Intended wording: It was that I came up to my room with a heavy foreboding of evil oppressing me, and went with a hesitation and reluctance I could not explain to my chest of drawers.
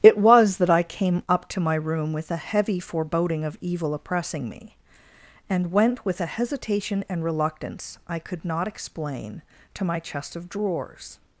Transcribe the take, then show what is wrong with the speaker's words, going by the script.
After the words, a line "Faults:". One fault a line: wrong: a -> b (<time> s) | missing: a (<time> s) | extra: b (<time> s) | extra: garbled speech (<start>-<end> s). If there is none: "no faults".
It was that I came up to my room with a heavy foreboding of evil oppressing me, and went with a hesitation and reluctance I could not explain to my chest of drawers.
Faults:
no faults